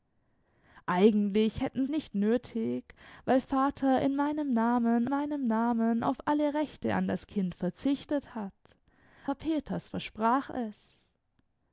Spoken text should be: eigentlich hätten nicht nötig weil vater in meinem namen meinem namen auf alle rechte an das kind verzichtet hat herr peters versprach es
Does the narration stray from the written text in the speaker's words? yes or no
no